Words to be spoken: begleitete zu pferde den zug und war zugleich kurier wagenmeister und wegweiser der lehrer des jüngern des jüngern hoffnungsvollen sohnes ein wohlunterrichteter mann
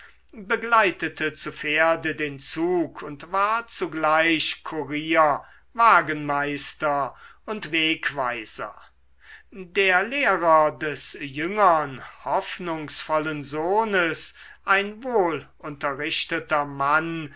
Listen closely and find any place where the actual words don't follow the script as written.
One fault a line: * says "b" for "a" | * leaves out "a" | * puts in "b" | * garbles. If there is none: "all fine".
* leaves out "des jüngern"